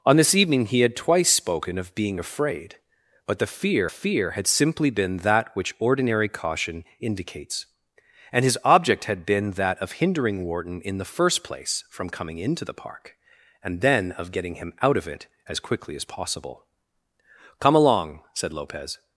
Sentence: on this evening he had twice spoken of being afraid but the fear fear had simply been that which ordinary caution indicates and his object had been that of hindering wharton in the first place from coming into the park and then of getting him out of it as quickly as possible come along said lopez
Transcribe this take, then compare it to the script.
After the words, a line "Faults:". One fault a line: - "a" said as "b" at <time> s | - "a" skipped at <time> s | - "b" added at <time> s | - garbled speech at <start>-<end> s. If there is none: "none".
on this evening he had twice spoken of being afraid but the fear fear had simply been that which ordinary caution indicates and his object had been that of hindering wharton in the first place from coming into the park and then of getting him out of it as quickly as possible come along said lopez
Faults:
none